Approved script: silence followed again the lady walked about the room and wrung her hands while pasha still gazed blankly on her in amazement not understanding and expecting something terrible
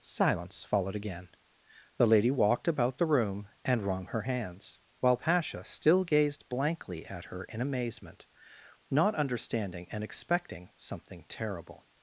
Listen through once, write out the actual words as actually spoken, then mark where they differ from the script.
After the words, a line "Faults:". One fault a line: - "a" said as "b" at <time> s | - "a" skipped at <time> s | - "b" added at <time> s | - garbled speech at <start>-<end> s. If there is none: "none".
silence followed again the lady walked about the room and wrung her hands while pasha still gazed blankly at her in amazement not understanding and expecting something terrible
Faults:
- "on" said as "at" at 7.0 s